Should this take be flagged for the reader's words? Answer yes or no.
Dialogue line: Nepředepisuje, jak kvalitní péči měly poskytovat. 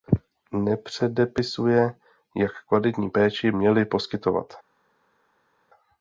no